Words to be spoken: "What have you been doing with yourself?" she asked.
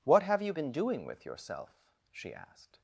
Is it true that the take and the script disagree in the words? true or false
false